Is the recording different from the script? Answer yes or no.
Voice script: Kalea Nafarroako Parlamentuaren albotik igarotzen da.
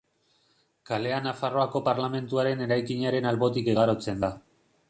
yes